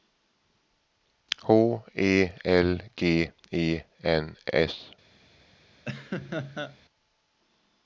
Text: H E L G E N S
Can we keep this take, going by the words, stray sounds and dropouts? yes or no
no